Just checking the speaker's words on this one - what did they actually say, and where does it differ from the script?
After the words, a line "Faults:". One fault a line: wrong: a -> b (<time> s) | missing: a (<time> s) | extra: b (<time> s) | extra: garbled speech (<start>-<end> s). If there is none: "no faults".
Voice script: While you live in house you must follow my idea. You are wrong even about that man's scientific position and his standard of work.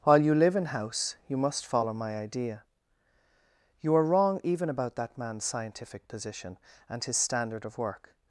While you live in house you must follow my idea. You are wrong even about that man's scientific position and his standard of work.
Faults:
no faults